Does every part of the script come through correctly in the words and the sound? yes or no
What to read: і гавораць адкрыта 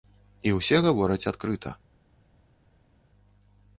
no